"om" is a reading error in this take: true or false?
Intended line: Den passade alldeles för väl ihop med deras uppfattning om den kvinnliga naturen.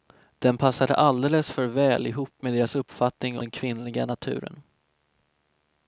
true